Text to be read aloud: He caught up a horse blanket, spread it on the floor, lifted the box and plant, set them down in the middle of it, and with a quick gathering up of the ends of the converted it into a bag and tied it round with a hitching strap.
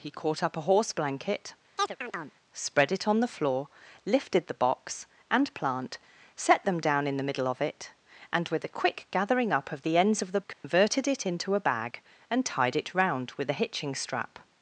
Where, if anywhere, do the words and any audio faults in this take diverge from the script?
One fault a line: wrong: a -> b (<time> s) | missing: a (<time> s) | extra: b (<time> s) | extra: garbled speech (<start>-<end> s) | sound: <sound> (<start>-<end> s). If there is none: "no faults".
sound: chirp (1.8-2.4 s)
sound: dropout (10.5-10.6 s)